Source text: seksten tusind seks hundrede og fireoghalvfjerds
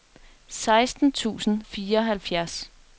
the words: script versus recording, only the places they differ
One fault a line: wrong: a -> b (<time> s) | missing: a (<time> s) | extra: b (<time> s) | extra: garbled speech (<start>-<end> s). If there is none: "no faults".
missing: seks hundrede og (1.6 s)